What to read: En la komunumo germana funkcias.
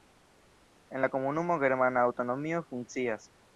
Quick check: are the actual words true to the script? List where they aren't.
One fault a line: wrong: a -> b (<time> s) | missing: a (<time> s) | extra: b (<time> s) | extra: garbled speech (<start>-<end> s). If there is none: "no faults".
extra: aŭtonomio (2.1 s)